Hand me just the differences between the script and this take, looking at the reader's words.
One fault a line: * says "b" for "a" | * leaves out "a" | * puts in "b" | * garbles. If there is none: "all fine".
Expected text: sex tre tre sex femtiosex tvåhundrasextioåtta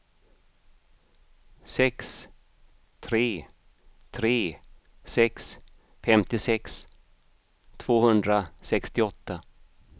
all fine